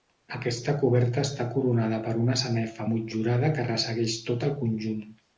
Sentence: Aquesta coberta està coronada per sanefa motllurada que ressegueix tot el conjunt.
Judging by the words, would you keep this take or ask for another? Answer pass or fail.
fail